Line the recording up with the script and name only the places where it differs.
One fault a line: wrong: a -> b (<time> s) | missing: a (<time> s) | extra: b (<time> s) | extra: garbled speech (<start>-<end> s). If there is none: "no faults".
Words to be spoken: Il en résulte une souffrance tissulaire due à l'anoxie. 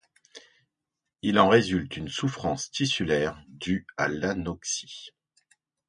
no faults